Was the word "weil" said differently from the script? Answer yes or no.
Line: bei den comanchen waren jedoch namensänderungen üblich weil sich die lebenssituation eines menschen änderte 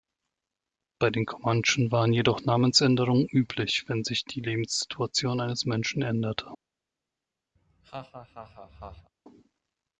yes